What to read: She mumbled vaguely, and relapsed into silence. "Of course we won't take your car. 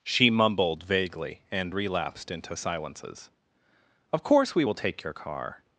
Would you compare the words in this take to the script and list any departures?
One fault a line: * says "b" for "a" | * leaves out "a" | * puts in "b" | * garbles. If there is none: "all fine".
* says "silences" for "silence"
* says "will" for "won't"